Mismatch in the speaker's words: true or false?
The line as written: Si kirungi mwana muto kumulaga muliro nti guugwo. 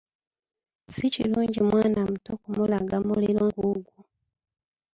true